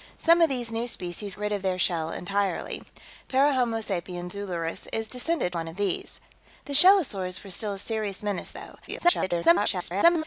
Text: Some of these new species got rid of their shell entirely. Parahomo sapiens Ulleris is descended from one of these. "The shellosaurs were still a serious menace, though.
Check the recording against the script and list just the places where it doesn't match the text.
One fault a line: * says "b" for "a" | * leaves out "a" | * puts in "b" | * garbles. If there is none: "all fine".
* leaves out "got"
* leaves out "from"
* garbles